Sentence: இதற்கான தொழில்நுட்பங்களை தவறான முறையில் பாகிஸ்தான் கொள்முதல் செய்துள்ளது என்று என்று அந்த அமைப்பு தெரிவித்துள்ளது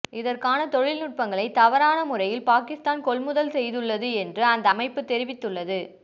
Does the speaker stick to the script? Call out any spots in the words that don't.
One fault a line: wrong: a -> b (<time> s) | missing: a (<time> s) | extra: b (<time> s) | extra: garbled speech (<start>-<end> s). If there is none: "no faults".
missing: என்று (4.4 s)